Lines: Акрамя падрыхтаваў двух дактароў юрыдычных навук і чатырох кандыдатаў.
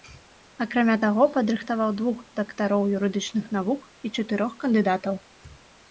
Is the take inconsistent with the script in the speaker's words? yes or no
yes